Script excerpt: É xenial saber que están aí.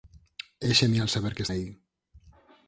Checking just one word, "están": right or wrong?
wrong